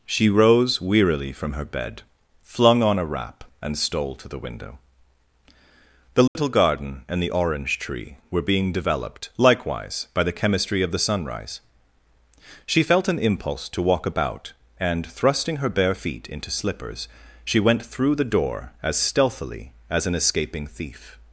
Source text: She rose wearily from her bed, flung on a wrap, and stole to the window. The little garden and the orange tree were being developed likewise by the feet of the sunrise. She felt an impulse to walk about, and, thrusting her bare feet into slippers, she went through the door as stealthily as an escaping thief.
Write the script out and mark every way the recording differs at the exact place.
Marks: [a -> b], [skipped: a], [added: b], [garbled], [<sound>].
She rose wearily from her bed, flung on a wrap, and stole to the window. The little [dropout] garden and the orange tree were being developed likewise by the [feet -> chemistry] of the sunrise. She felt an impulse to walk about, and, thrusting her bare feet into slippers, she went through the door as stealthily as an escaping thief.